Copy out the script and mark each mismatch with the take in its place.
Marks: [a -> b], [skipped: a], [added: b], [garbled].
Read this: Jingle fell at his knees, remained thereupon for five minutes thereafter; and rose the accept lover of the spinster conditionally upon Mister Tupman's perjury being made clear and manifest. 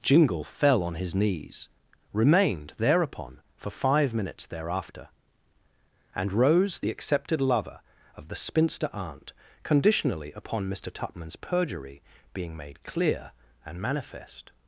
Jingle fell [at -> on] his knees, remained thereupon for five minutes thereafter; and rose the [accept -> accepted] lover of the spinster [added: aunt] conditionally upon Mister Tupman's perjury being made clear and manifest.